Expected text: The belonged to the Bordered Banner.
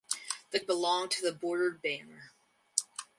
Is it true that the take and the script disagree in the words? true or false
false